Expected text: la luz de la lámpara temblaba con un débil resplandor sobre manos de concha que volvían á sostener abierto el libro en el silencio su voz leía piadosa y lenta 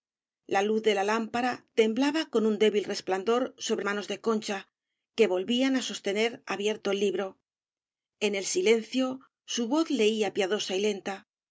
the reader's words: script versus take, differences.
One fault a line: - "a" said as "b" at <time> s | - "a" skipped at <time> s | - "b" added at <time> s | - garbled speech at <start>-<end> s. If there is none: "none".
none